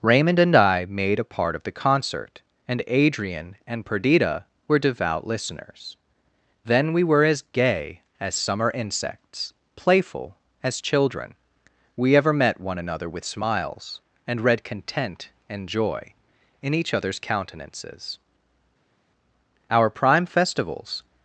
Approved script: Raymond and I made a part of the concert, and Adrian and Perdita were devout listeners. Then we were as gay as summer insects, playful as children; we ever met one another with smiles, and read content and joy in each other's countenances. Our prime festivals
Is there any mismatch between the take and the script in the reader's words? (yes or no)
no